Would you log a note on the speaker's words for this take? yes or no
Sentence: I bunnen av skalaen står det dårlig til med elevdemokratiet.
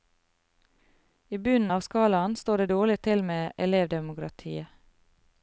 no